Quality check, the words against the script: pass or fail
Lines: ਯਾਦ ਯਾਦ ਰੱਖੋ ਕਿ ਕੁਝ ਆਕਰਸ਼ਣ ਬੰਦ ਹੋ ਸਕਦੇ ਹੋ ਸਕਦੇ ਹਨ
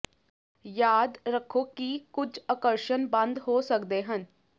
fail